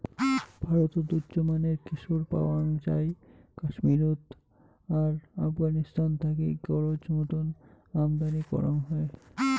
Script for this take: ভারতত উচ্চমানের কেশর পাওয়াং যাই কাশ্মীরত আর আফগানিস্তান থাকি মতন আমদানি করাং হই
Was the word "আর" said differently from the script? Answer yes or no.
no